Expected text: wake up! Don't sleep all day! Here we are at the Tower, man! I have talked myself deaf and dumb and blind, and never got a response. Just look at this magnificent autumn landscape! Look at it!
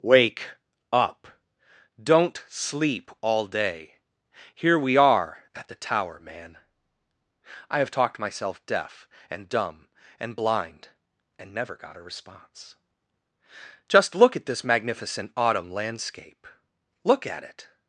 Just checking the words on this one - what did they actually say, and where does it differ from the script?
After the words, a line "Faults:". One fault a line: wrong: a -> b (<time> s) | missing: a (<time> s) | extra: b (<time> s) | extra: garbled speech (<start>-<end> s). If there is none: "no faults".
wake up! Don't sleep all day! Here we are at the Tower, man! I have talked myself deaf and dumb and blind, and never got a response. Just look at this magnificent autumn landscape! Look at it!
Faults:
no faults